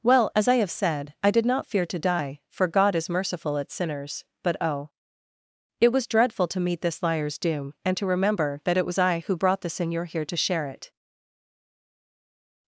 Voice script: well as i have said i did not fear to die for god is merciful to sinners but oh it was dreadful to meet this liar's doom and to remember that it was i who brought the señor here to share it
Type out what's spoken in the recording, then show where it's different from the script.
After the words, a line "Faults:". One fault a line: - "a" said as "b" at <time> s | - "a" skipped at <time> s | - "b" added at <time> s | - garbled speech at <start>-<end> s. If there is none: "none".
well as i have said i did not fear to die for god is merciful at sinners but oh it was dreadful to meet this liar's doom and to remember that it was i who brought the señor here to share it
Faults:
- "to" said as "at" at 3.6 s